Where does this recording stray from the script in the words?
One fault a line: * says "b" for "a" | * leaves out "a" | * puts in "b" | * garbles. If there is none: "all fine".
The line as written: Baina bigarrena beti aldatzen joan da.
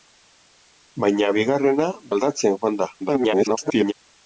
* leaves out "beti"
* garbles